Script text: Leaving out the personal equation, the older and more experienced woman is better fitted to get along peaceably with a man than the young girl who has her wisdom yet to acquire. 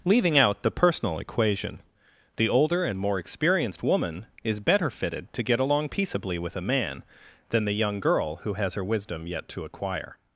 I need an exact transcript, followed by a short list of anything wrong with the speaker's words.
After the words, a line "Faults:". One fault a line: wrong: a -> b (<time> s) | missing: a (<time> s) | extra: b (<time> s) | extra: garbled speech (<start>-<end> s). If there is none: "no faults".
Leaving out the personal equation, the older and more experienced woman is better fitted to get along peaceably with a man than the young girl who has her wisdom yet to acquire.
Faults:
no faults